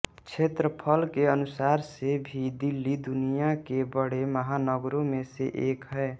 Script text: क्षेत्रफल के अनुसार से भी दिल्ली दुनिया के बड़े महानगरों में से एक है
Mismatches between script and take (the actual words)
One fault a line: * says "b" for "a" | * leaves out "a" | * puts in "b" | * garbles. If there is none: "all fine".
all fine